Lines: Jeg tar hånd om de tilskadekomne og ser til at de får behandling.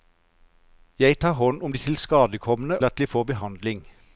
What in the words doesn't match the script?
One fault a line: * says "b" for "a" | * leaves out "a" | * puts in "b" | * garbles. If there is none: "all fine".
* leaves out "og ser til"